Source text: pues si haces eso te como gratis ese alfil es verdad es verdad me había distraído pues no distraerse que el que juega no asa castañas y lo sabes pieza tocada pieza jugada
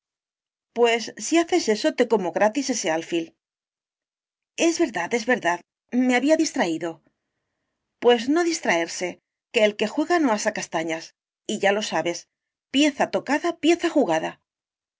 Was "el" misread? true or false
false